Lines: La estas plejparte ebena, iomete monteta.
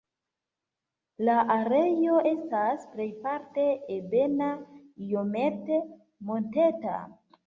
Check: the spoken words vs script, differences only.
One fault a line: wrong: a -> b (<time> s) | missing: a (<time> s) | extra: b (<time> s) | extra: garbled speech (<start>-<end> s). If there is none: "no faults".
extra: areo (1.6 s)